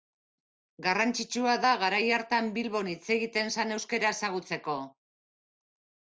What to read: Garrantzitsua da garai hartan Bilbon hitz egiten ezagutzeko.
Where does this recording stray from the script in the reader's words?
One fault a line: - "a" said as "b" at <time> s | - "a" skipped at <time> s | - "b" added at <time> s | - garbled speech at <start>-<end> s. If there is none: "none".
- "zen euskara" added at 3.6 s